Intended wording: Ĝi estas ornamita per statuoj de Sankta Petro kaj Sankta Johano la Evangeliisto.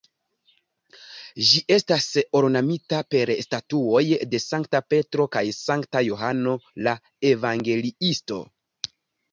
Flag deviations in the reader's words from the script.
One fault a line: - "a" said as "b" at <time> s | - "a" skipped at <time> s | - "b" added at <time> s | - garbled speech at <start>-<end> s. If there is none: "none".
none